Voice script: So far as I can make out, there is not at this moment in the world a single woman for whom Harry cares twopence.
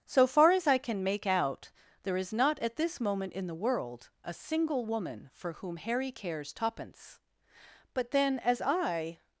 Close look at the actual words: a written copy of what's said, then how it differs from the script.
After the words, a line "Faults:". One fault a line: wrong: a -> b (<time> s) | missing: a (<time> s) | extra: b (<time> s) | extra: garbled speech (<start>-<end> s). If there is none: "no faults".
So far as I can make out, there is not at this moment in the world a single woman for whom Harry cares twopence. But then, as I
Faults:
extra: But then as I (7.9 s)